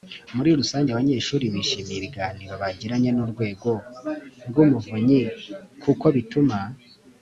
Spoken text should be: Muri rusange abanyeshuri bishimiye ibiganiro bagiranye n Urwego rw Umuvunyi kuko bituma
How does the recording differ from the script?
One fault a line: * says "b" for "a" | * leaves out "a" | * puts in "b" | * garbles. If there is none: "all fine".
all fine